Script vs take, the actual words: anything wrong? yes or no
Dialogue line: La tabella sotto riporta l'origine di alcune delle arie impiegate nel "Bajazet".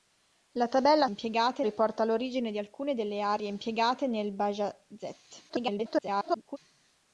yes